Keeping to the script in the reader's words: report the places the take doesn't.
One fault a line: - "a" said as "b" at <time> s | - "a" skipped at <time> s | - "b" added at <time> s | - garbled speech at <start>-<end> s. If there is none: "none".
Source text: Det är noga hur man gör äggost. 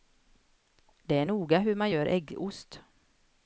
none